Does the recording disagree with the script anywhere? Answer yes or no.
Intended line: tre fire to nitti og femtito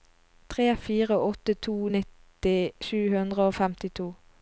yes